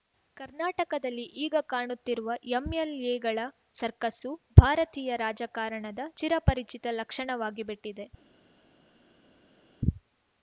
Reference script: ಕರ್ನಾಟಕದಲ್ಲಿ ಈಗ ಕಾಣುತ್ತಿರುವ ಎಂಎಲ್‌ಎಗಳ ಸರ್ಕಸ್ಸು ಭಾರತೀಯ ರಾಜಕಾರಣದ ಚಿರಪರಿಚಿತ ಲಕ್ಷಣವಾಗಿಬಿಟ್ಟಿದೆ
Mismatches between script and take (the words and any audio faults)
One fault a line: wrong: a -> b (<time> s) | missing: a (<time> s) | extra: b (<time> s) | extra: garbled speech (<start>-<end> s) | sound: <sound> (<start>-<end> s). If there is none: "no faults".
no faults